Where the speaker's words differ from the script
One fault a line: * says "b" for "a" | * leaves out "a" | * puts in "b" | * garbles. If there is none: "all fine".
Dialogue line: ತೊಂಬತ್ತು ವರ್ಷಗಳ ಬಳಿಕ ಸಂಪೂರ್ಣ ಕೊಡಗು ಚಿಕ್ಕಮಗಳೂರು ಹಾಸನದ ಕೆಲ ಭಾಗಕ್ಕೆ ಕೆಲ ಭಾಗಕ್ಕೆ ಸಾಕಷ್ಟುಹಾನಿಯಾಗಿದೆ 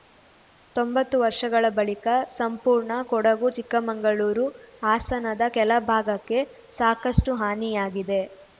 * leaves out "ಕೆಲ ಭಾಗಕ್ಕೆ"